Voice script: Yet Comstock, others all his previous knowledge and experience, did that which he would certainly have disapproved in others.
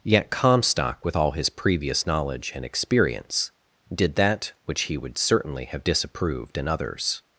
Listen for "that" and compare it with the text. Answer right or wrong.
right